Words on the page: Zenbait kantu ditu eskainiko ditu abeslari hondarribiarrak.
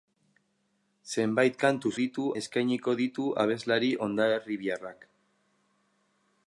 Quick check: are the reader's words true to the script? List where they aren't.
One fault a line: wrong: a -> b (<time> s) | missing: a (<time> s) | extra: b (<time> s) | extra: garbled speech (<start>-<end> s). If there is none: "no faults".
no faults